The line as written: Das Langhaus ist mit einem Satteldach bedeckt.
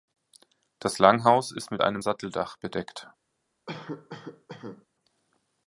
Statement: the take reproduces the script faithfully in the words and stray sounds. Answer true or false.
false